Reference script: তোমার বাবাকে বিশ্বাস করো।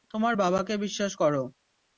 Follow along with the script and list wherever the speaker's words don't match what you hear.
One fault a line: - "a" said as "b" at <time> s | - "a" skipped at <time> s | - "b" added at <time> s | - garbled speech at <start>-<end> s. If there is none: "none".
none